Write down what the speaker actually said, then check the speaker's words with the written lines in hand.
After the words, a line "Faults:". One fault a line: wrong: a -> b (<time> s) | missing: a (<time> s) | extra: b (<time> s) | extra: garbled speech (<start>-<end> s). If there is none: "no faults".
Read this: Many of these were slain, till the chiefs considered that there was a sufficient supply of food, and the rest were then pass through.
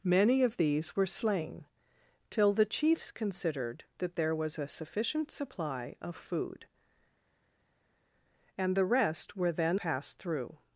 Many of these were slain, till the chiefs considered that there was a sufficient supply of food, and the rest were then pass through.
Faults:
no faults